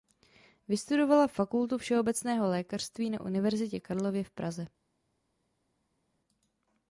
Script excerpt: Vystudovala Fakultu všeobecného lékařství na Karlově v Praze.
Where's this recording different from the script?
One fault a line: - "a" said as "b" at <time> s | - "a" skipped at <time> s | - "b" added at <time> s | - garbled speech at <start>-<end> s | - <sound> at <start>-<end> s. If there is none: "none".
- "Univerzitě" added at 3.2 s